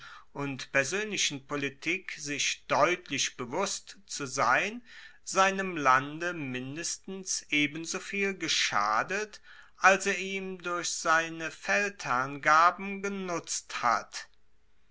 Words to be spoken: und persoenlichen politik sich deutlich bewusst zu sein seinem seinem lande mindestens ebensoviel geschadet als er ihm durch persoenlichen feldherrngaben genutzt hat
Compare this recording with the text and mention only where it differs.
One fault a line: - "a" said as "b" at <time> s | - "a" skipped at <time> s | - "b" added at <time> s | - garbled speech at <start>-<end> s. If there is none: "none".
- "seinem" skipped at 5.8 s
- "persoenlichen" said as "seine" at 10.9 s